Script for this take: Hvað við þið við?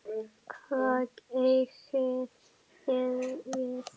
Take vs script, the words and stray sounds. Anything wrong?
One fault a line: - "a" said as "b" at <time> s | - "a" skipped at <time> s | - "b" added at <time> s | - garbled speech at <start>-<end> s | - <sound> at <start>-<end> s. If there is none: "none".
- "við" said as "eigið" at 1.4 s